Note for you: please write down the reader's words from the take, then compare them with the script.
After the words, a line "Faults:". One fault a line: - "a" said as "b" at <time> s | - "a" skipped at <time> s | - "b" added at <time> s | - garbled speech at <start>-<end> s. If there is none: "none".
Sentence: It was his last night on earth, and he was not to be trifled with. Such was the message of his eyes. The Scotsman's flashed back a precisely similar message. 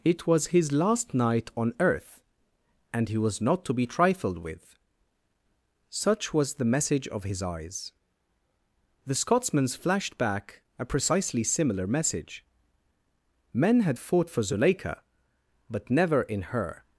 It was his last night on earth, and he was not to be trifled with. Such was the message of his eyes. The Scotsman's flashed back a precisely similar message. Men had fought for Zuleika, but never in her
Faults:
- "Men had fought for Zuleika but never in her" added at 13.5 s